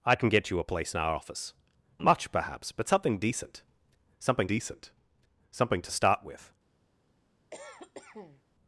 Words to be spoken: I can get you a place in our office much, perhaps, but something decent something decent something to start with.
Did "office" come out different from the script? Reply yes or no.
no